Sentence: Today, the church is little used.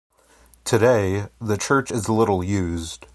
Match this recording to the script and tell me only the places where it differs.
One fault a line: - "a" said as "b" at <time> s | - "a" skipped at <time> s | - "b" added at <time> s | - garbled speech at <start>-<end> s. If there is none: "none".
none